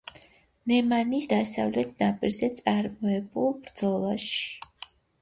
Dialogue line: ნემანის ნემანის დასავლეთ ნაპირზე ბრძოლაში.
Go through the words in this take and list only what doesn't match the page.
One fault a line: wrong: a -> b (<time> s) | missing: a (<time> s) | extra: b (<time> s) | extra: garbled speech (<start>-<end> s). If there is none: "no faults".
missing: ნემანის (1.3 s)
extra: წარმოებულ (2.6 s)